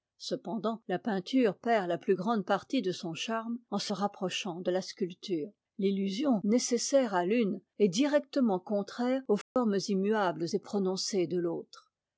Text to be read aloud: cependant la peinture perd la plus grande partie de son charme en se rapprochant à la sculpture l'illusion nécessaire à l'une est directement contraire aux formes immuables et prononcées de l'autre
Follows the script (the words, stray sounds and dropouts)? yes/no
no